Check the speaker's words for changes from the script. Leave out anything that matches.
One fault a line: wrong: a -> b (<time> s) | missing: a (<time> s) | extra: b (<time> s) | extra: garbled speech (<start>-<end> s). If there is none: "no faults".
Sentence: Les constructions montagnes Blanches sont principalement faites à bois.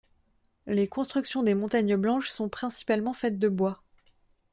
extra: des (1.4 s)
wrong: à -> de (3.4 s)